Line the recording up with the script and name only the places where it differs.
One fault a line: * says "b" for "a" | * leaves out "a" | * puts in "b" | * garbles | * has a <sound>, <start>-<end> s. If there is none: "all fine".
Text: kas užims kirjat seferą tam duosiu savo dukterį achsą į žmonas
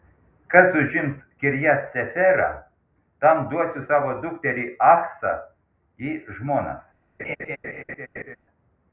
* has a laugh, 7.2-8.4 s